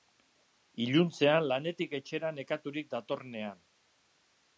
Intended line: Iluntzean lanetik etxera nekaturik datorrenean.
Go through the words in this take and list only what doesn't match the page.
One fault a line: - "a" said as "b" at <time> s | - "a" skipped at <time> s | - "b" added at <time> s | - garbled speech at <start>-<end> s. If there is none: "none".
none